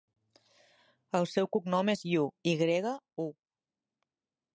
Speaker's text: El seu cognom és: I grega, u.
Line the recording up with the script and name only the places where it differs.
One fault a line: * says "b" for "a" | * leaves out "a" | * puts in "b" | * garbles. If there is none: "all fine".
* puts in "Yu"